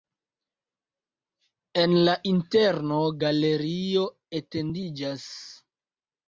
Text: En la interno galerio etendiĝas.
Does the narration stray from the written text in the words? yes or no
no